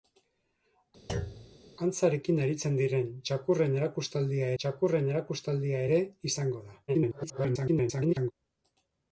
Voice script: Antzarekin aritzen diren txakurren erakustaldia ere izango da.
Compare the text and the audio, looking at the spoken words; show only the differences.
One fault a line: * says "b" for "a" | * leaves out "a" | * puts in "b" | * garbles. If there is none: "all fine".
* puts in "txakurren erakustaldia"
* garbles